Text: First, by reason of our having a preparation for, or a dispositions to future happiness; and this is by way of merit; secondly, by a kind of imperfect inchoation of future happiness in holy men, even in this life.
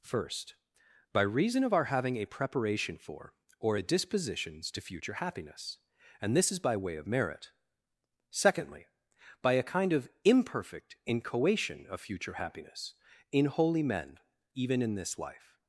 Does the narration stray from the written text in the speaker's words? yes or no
no